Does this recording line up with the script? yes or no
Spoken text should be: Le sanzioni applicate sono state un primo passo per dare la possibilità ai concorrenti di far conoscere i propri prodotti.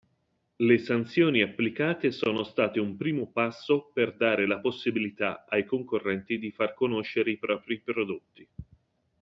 yes